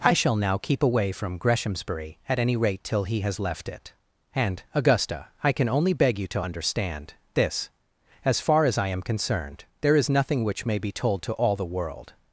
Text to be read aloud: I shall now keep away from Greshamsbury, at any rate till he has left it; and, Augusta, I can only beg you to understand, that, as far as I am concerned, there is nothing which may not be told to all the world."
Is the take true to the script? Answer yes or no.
no